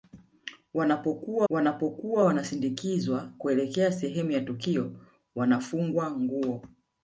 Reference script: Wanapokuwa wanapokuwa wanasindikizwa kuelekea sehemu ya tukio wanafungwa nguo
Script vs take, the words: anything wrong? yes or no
no